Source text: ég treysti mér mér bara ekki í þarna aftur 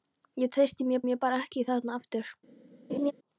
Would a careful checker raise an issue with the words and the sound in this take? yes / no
yes